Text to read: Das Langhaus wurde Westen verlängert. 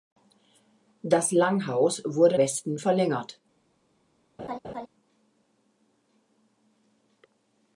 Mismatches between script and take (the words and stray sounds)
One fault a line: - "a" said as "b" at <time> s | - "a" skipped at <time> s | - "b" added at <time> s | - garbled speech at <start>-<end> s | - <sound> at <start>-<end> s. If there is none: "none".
- laugh at 4.4-4.9 s